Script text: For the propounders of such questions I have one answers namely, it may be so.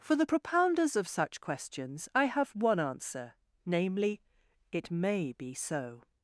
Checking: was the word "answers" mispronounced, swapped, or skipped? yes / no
yes